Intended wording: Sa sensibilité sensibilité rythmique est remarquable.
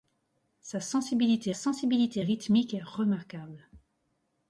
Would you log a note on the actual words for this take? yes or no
no